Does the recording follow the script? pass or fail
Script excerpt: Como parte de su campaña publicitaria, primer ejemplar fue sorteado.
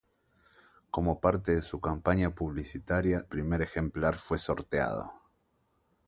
pass